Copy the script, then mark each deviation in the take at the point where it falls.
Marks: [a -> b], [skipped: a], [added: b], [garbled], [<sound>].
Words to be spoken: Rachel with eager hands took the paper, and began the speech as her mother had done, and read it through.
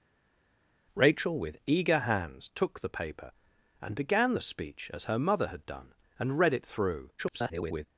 Rachel with eager hands took the paper, and began the speech as her mother had done, and read it through. [garbled]